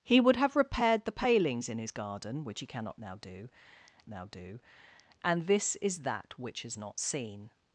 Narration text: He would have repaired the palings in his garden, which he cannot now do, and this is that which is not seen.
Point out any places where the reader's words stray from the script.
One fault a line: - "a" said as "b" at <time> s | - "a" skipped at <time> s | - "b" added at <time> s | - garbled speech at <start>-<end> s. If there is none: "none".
- "now do" added at 4.1 s